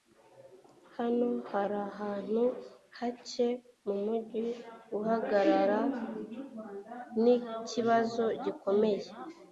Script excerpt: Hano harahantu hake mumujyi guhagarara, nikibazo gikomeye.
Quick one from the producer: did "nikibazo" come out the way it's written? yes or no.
yes